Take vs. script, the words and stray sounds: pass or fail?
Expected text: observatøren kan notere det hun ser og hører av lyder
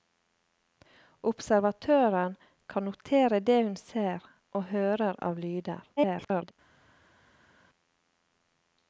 fail